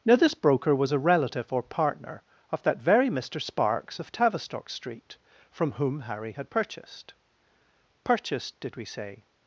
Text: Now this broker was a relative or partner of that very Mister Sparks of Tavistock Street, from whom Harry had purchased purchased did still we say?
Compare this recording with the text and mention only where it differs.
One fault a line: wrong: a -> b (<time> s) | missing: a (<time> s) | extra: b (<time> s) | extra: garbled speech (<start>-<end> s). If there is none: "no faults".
missing: still (8.8 s)